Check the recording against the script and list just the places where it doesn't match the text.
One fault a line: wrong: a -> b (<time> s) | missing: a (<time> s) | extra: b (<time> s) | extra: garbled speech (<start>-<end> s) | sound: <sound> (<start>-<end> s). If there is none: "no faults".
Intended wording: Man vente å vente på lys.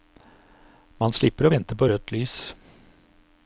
wrong: vente -> slipper (1.2 s)
extra: rødt (1.9 s)